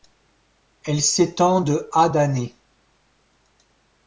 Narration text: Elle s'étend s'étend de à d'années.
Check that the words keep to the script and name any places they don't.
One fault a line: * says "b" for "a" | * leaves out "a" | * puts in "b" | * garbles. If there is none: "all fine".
* leaves out "s'étend"